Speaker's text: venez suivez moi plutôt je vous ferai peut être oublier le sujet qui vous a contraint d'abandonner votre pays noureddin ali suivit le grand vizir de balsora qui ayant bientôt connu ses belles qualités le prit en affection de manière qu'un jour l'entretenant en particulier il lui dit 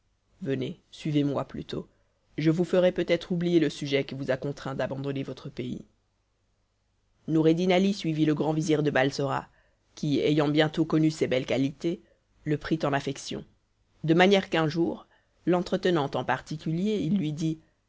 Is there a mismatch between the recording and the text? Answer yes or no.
no